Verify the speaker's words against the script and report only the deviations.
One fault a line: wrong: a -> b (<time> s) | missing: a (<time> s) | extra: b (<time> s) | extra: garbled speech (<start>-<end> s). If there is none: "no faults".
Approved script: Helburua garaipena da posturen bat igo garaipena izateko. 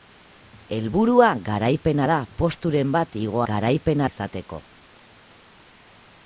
no faults